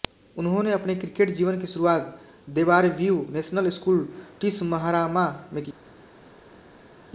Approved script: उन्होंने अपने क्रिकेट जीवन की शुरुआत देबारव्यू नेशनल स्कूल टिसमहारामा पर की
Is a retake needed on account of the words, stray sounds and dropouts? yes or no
yes